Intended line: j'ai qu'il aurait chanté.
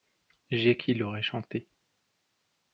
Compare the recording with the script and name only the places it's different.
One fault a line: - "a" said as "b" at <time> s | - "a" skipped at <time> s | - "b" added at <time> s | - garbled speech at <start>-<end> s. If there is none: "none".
none